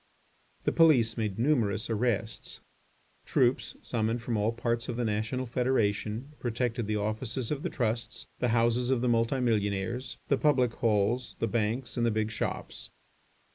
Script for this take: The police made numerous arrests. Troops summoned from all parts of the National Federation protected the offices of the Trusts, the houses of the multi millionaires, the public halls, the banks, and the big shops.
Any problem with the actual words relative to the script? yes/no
no